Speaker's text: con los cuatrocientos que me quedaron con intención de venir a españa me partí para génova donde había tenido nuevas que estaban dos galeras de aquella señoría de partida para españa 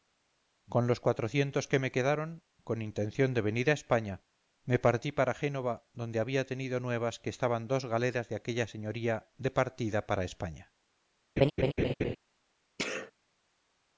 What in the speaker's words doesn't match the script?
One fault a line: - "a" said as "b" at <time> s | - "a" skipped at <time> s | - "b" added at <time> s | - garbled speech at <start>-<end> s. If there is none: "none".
none